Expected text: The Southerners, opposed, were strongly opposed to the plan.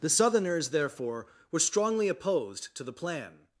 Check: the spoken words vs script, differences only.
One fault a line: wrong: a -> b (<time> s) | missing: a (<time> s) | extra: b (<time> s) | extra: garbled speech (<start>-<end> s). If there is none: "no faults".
wrong: opposed -> therefore (0.7 s)